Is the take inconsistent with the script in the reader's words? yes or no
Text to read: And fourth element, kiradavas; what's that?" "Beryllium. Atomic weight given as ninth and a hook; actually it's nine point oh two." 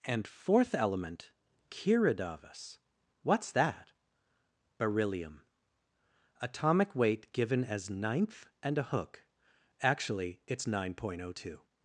no